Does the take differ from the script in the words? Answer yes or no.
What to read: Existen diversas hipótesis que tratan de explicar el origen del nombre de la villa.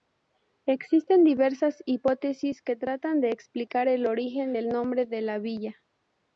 no